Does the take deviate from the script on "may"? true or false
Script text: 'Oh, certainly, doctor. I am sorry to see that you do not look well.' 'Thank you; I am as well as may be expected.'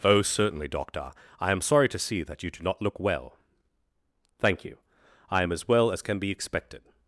true